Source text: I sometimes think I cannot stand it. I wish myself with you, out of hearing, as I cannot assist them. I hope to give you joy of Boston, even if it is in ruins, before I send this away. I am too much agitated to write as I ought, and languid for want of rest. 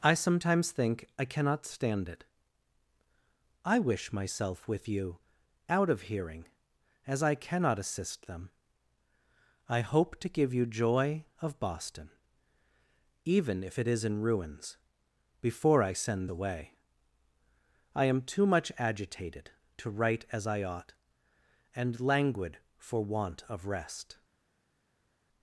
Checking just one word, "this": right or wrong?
wrong